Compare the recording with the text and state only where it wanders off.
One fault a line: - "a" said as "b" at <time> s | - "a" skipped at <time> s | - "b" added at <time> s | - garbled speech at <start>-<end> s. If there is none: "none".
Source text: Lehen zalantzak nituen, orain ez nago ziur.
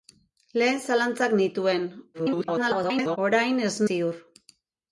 - garbled speech at 2.1-3.2 s
- "nago" skipped at 3.7 s